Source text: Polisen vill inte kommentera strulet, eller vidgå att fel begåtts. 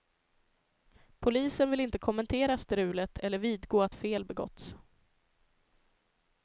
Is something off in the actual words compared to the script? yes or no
no